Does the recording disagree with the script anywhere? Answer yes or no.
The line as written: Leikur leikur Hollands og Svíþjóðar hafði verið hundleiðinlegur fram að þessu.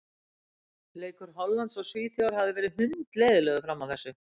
yes